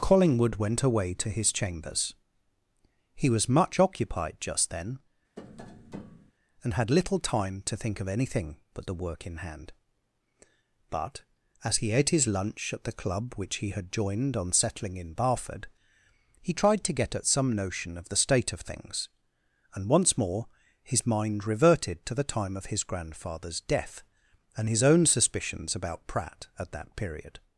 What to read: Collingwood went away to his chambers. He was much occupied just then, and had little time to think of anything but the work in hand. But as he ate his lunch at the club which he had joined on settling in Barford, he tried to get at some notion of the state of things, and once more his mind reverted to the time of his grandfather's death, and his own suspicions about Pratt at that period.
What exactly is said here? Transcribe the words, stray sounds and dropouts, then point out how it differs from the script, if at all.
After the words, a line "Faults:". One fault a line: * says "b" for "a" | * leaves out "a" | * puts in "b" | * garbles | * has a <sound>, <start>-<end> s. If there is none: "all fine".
Collingwood went away to his chambers. He was much occupied just then, and had little time to think of anything but the work in hand. But as he ate his lunch at the club which he had joined on settling in Barford, he tried to get at some notion of the state of things, and once more his mind reverted to the time of his grandfather's death, and his own suspicions about Pratt at that period.
Faults:
* has a tap, 5.4-6.3 s